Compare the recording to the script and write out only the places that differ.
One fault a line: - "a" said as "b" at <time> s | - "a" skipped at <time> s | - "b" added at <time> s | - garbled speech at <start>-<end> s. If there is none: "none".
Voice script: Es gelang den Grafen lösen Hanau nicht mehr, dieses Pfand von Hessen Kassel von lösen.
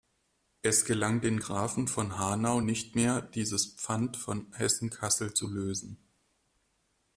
- "lösen" said as "von" at 1.9 s
- "von" said as "zu" at 5.3 s